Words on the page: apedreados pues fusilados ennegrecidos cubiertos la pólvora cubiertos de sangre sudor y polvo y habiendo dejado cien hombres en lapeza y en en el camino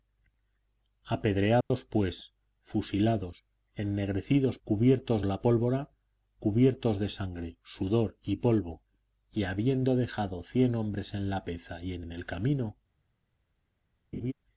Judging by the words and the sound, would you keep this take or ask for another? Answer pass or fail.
fail